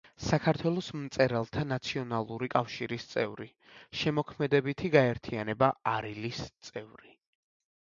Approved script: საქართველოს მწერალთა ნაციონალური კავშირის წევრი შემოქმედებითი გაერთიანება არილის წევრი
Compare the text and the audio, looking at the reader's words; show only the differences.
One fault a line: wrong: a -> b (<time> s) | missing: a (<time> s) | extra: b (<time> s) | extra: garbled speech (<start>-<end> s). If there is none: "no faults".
no faults